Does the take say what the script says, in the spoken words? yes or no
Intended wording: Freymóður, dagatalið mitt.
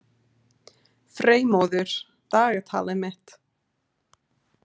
yes